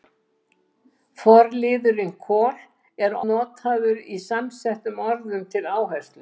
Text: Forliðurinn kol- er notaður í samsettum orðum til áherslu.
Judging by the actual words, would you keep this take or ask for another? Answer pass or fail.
pass